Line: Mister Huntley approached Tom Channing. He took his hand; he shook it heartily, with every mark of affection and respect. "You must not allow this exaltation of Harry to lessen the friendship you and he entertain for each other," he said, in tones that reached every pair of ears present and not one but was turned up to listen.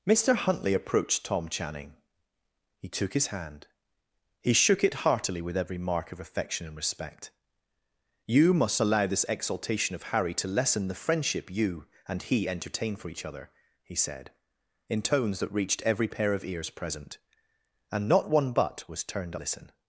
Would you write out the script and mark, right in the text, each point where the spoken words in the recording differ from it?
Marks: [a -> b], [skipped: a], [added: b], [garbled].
Mister Huntley approached Tom Channing. He took his hand; he shook it heartily, with every mark of affection and respect. "You must [skipped: not] allow this exaltation of Harry to lessen the friendship you and he entertain for each other," he said, in tones that reached every pair of ears present and not one but was turned [skipped: up to] listen.